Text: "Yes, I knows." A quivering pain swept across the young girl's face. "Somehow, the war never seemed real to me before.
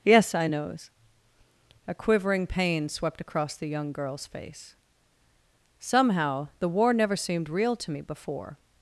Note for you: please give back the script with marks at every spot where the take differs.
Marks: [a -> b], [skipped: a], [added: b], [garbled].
"Yes, I knows." A quivering pain swept across the young girl's face. "Somehow, the war never seemed real to me before.